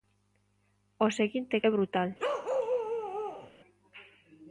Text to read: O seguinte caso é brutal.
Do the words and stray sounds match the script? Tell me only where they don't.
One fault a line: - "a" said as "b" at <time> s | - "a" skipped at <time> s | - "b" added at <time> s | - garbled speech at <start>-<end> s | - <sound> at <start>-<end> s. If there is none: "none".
- "caso" skipped at 1.6 s
- bark at 2.2-3.5 s